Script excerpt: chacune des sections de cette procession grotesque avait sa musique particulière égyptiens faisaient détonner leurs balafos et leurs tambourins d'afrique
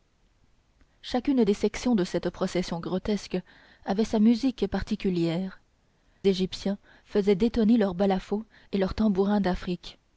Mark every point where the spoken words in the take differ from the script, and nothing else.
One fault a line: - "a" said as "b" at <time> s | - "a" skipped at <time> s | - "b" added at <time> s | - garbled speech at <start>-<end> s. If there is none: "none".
none